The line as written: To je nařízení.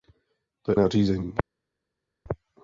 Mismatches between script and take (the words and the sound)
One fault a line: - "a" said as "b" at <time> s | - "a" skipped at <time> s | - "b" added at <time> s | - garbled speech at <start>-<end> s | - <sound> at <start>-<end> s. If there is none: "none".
none